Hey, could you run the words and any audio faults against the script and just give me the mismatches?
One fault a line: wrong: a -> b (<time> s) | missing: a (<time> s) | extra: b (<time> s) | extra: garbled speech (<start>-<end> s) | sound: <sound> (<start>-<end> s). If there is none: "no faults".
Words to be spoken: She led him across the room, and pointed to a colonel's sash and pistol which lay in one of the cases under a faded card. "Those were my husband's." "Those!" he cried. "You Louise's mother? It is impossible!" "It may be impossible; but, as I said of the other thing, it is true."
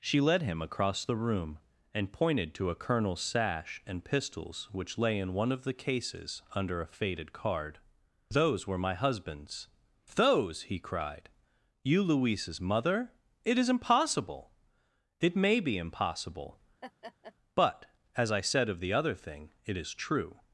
wrong: pistol -> pistols (4.0 s)
sound: laugh (16.8-17.3 s)